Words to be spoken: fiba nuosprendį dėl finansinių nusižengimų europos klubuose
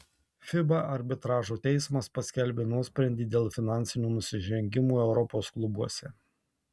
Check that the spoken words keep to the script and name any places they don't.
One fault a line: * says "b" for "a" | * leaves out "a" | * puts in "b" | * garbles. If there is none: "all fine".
* puts in "arbitražo teismas paskelbė"